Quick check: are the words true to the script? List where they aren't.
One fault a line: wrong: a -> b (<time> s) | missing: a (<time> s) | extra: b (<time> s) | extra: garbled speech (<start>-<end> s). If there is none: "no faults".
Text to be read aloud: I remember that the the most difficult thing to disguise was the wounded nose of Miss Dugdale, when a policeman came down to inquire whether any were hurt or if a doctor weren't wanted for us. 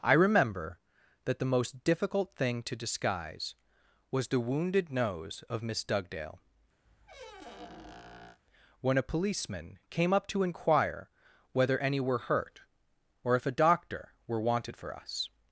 missing: the (1.5 s)
wrong: down -> up (10.1 s)
wrong: weren't -> were (14.3 s)